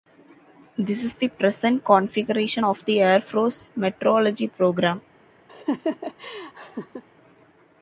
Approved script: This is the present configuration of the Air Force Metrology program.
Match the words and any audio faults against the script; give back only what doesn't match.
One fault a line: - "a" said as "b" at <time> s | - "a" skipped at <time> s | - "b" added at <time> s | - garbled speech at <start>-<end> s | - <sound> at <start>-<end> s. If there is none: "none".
- laugh at 5.5-7.0 s